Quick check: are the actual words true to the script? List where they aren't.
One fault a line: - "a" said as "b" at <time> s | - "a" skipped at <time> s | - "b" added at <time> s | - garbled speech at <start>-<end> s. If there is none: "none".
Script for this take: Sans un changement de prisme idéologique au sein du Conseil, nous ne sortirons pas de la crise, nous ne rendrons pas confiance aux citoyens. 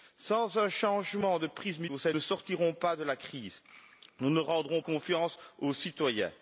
- "idéologique" skipped at 1.9 s
- "du Conseil nous" skipped at 2.1 s
- "pas" skipped at 4.8 s